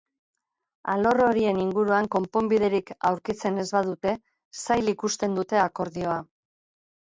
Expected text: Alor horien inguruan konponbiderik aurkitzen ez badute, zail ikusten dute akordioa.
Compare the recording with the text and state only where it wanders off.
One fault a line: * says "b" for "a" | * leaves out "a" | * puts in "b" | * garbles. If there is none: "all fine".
all fine